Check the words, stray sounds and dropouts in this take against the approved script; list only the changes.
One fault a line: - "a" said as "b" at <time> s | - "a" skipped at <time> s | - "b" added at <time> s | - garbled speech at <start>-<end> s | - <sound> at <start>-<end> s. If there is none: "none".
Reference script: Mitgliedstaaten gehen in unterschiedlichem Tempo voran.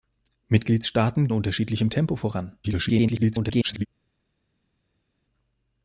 - "gehen in" skipped at 1.3 s
- garbled speech at 2.6-3.9 s